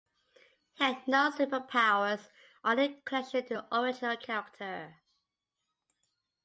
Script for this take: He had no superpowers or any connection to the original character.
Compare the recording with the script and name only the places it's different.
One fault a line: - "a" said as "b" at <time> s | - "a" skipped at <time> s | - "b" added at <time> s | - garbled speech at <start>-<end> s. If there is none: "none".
none